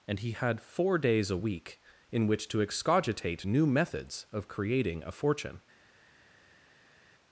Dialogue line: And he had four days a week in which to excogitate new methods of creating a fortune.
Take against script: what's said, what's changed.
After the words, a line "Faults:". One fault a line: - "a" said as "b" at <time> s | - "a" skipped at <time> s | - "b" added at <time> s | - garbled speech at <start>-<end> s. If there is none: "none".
And he had four days a week in which to excogitate new methods of creating a fortune.
Faults:
none